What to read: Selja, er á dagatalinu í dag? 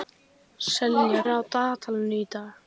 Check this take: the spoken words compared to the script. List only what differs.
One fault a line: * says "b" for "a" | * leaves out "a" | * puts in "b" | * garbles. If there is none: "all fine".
all fine